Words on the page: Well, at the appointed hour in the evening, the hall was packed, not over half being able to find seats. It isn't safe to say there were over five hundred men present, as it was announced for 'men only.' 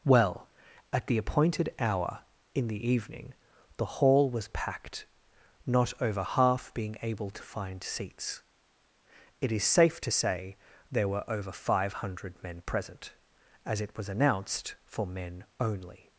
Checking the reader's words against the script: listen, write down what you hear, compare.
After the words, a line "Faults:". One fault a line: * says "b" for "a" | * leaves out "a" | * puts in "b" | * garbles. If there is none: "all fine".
Well, at the appointed hour in the evening, the hall was packed, not over half being able to find seats. It is safe to say there were over five hundred men present, as it was announced for 'men only.'
Faults:
* says "is" for "isn't"